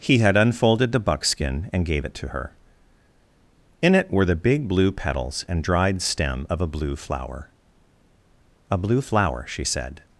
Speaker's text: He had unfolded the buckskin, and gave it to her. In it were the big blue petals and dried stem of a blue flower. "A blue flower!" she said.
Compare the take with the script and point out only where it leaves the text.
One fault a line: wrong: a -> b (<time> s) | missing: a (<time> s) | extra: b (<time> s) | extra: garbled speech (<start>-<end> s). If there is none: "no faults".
no faults